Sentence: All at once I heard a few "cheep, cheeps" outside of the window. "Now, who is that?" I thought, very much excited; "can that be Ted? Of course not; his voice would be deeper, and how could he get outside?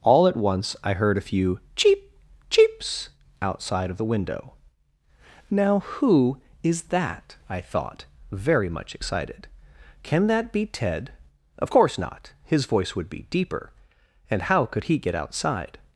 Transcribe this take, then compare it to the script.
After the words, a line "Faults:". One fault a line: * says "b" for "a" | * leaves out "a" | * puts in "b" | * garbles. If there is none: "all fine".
All at once I heard a few "cheep, cheeps" outside of the window. "Now, who is that?" I thought, very much excited; "can that be Ted? Of course not; his voice would be deeper, and how could he get outside?
Faults:
all fine